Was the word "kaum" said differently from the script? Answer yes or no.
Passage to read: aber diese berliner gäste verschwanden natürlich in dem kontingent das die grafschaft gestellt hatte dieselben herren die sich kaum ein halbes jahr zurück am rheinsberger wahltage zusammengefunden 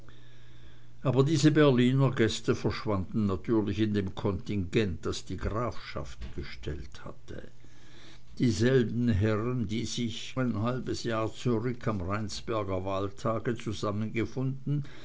yes